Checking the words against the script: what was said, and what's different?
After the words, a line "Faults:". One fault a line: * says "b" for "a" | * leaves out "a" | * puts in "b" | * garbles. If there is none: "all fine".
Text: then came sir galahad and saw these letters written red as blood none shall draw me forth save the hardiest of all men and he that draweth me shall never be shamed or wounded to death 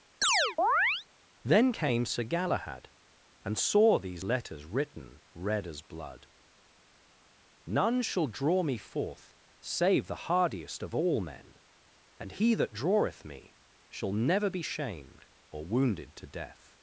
then came sir galahad and saw these letters written red as blood none shall draw me forth save the hardiest of all men and he that draweth me shall never be shamed or wounded to death
Faults:
all fine